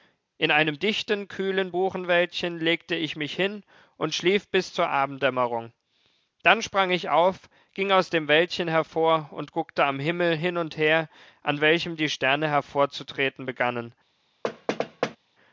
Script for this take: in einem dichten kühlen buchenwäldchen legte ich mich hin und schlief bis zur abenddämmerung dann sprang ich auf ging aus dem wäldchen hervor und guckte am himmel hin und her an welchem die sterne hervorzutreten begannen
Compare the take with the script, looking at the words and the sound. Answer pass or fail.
fail